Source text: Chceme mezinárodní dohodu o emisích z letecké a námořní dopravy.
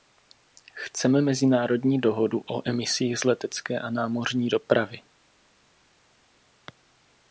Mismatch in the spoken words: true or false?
false